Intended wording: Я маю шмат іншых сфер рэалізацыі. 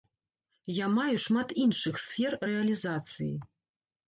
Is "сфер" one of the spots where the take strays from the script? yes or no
no